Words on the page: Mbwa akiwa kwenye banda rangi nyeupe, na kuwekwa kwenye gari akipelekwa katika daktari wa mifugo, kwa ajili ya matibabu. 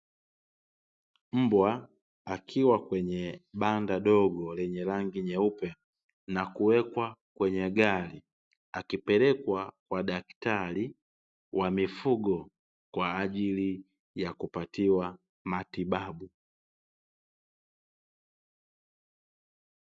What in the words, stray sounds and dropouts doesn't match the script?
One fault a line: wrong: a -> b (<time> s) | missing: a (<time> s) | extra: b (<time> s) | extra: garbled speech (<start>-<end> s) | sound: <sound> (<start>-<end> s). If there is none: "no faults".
extra: dogo lenye (4.0 s)
wrong: katika -> kwa (9.9 s)
extra: kupatiwa (14.3 s)